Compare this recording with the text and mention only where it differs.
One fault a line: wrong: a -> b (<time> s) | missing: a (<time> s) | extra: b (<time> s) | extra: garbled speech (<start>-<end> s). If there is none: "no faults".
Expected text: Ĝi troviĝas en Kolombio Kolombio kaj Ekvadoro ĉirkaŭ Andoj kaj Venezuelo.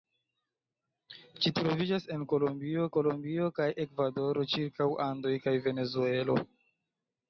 no faults